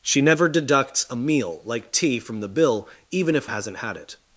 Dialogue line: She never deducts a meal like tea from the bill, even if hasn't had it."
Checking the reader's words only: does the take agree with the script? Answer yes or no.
yes